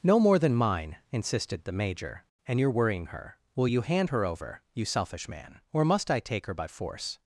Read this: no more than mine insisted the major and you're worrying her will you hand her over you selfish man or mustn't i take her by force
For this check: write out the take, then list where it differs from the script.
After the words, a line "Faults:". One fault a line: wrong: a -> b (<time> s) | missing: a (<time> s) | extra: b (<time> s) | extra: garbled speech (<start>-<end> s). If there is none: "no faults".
no more than mine insisted the major and you're worrying her will you hand her over you selfish man or must i take her by force
Faults:
wrong: mustn't -> must (5.8 s)